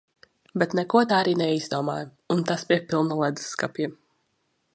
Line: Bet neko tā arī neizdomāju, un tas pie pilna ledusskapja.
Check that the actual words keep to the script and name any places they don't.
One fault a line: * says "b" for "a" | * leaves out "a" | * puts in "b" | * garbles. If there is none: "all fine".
all fine